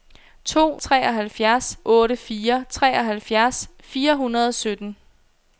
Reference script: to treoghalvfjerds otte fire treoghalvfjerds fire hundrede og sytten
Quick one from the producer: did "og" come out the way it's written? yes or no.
yes